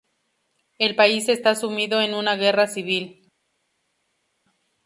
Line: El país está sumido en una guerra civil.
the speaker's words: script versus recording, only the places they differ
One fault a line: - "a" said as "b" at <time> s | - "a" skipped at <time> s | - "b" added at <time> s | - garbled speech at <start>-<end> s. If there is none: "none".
none